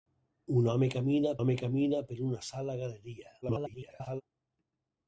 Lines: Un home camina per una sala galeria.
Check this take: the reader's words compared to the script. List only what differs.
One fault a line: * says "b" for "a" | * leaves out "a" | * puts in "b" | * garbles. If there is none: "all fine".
* puts in "home camina"
* garbles